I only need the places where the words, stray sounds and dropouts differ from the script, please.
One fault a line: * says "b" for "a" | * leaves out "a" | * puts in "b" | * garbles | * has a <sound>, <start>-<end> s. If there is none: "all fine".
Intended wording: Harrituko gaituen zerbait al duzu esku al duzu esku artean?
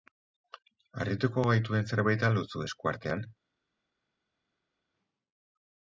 * leaves out "al duzu esku"